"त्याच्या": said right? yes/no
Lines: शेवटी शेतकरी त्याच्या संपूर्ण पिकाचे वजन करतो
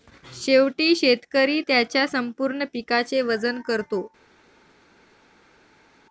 yes